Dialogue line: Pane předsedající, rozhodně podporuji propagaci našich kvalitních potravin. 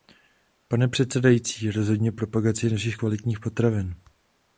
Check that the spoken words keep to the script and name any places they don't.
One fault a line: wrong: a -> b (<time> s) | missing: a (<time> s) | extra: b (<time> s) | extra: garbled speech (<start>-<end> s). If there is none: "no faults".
missing: podporuji (2.1 s)